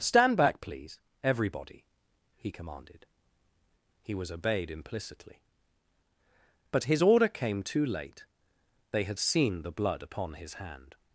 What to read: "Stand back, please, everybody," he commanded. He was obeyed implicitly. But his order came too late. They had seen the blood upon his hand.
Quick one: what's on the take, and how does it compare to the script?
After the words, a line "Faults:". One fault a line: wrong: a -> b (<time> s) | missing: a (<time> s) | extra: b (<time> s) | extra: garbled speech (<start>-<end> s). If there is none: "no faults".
"Stand back, please, everybody," he commanded. He was obeyed implicitly. But his order came too late. They had seen the blood upon his hand.
Faults:
no faults